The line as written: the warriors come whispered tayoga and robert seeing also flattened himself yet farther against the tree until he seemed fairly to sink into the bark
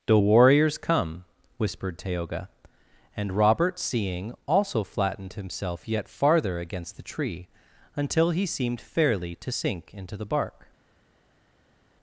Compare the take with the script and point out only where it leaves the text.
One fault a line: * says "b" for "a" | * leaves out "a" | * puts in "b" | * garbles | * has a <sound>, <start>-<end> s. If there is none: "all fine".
all fine